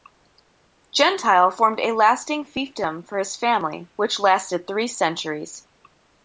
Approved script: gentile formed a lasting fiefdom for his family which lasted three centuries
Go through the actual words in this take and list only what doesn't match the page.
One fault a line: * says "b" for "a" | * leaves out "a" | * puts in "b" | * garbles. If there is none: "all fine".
all fine